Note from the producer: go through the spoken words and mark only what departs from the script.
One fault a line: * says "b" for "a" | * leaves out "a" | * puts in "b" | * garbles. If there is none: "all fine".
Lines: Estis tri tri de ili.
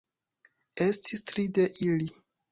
* leaves out "tri"